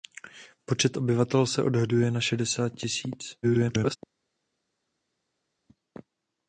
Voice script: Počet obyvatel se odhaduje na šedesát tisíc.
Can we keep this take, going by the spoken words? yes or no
no